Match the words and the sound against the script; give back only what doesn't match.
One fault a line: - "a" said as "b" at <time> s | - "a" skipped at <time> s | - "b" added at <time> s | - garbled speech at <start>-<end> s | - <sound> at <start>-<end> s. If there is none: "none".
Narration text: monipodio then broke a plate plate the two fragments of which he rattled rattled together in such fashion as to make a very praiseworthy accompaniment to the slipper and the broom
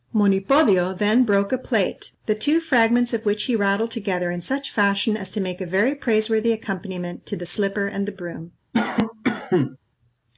- "plate" skipped at 2.1 s
- "rattled" skipped at 3.9 s
- cough at 8.7-9.8 s